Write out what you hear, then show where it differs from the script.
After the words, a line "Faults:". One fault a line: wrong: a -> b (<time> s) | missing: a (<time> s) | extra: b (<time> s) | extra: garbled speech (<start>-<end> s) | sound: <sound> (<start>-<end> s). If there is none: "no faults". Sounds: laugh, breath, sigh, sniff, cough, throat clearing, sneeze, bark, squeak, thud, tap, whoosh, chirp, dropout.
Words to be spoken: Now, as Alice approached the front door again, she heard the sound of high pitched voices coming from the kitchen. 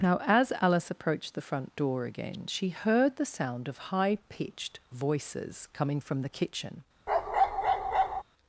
Now, as Alice approached the front door again, she heard the sound of high pitched voices coming from the kitchen.
Faults:
sound: bark (7.1-8.2 s)